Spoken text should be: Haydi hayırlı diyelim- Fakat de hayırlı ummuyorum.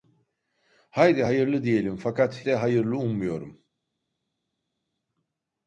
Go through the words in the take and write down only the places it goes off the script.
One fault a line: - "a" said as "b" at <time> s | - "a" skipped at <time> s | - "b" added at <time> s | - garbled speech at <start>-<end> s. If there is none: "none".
none